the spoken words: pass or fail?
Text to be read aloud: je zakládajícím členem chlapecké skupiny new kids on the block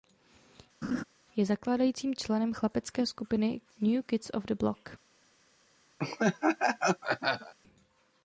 pass